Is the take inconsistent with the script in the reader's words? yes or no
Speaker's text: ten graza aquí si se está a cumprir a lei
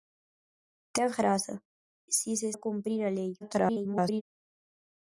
yes